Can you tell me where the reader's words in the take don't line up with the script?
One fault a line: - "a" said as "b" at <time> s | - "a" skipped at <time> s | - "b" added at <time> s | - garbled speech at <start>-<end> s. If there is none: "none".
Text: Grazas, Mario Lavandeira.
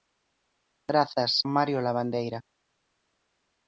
none